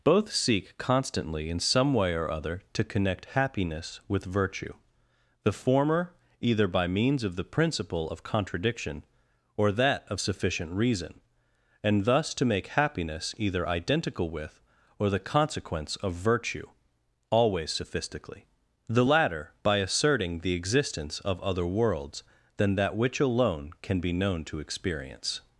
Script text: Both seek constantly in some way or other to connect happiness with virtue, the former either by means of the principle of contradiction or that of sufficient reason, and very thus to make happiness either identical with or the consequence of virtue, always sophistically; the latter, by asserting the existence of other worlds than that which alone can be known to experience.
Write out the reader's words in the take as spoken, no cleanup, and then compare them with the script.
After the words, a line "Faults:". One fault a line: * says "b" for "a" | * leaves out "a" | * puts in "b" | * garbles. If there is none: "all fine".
Both seek constantly in some way or other to connect happiness with virtue, the former either by means of the principle of contradiction or that of sufficient reason, and thus to make happiness either identical with or the consequence of virtue, always sophistically; the latter, by asserting the existence of other worlds than that which alone can be known to experience.
Faults:
* leaves out "very"